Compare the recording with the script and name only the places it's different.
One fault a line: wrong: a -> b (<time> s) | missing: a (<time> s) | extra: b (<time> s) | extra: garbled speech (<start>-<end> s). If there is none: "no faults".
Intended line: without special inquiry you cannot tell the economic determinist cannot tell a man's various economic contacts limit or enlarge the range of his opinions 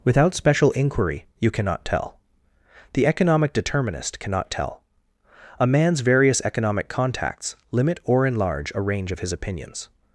wrong: the -> a (8.7 s)